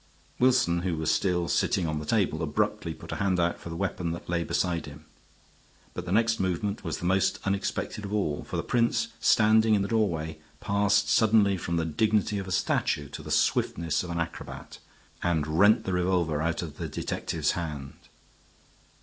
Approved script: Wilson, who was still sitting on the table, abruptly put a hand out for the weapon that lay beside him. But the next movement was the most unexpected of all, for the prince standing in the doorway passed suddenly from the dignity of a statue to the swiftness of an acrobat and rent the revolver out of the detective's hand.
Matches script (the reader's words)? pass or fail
pass